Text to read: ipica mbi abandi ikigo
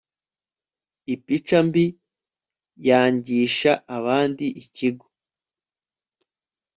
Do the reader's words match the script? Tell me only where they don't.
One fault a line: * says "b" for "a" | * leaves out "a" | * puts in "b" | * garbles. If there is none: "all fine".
* puts in "yangisha"